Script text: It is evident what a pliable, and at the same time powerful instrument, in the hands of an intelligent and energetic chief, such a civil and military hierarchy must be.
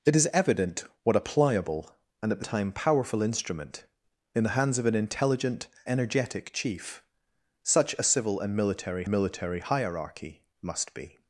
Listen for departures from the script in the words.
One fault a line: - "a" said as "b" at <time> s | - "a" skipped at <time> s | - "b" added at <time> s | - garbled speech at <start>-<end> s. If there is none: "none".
- "same" skipped at 2.5 s
- "and" skipped at 5.7 s
- "military" added at 9.1 s